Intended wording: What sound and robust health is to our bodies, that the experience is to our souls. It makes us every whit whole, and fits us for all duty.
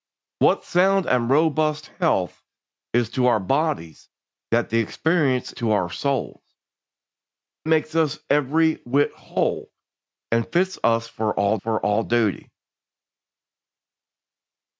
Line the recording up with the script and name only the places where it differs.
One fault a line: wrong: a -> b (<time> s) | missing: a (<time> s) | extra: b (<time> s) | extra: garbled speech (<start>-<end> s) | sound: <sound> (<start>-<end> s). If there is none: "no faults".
missing: is (5.5 s)
missing: It (6.4 s)
extra: for all (11.6 s)